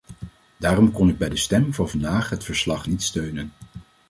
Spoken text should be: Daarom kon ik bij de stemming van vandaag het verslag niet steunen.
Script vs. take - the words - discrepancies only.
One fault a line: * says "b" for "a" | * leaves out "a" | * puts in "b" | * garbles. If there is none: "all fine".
all fine